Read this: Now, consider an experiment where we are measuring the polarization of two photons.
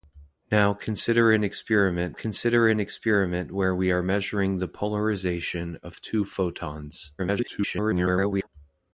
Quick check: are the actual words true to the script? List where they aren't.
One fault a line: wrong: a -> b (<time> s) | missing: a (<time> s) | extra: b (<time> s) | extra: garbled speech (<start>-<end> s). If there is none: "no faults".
extra: consider an experiment (2.1 s)
extra: garbled speech (7.2-8.5 s)